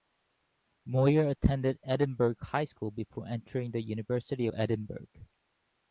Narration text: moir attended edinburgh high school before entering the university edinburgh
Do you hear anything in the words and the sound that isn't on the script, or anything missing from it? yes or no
no